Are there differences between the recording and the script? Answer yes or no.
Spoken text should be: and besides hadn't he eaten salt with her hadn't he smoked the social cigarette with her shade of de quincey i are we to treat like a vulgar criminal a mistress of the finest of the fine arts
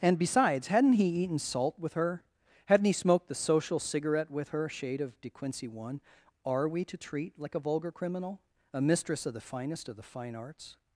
yes